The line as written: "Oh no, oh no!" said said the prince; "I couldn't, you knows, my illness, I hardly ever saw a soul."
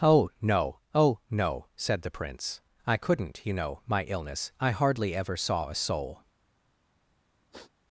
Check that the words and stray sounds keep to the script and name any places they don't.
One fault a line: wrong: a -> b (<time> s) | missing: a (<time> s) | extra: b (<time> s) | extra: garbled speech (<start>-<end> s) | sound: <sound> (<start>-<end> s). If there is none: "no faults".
missing: said (2.0 s)
wrong: knows -> know (3.5 s)
sound: sniff (7.5-7.7 s)